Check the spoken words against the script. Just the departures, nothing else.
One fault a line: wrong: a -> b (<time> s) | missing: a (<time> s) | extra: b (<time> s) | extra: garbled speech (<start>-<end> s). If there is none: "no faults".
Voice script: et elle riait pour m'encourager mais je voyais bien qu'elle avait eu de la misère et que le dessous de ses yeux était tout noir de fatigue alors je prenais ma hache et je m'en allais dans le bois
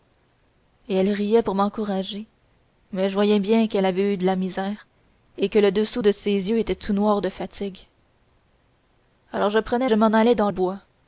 missing: ma hache et (9.9 s)
missing: le (10.5 s)